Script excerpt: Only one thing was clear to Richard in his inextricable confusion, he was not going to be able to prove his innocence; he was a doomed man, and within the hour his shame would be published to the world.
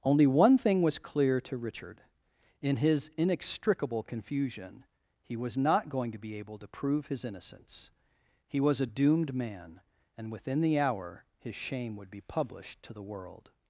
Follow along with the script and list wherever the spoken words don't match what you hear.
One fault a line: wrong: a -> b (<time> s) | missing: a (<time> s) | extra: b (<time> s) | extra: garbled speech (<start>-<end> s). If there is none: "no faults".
no faults